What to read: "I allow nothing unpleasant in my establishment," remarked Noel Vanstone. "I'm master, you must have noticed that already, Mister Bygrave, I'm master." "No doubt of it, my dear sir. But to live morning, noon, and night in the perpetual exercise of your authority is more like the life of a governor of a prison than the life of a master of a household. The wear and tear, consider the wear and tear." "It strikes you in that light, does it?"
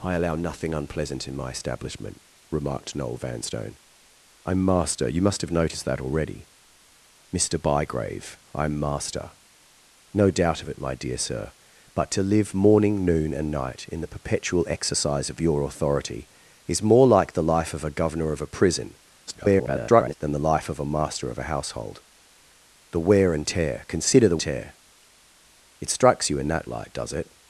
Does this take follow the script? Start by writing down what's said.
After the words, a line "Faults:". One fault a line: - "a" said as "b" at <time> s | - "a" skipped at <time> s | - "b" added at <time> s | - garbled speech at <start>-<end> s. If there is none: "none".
"I allow nothing unpleasant in my establishment," remarked Noel Vanstone. "I'm master, you must have noticed that already, Mister Bygrave, I'm master." "No doubt of it, my dear sir. But to live morning, noon, and night in the perpetual exercise of your authority is more like the life of a governor of a prison [garbled] than the life of a master of a household. The wear and tear, consider the tear." "It strikes you in that light, does it?"
Faults:
- garbled speech at 19.3-20.2 s
- "wear and" skipped at 24.4 s